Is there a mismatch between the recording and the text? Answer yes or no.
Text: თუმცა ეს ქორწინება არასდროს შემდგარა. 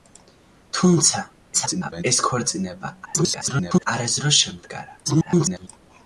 yes